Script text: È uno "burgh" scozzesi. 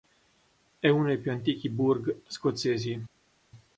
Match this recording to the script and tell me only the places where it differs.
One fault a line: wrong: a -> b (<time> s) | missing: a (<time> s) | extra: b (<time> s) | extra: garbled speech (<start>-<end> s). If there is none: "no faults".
extra: dei più antichi (1.1 s)